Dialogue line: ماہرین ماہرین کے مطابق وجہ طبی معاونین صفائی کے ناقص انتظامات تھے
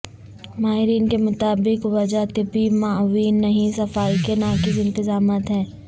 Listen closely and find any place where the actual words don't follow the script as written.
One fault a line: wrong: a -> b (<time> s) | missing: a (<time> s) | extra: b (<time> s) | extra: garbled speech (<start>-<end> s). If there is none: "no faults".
missing: ماہرین (1.1 s)
extra: نہیں (3.4 s)
wrong: تھے -> ہیں (5.5 s)